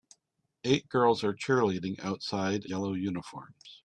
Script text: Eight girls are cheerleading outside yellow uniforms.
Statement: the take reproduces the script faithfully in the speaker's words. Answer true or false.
true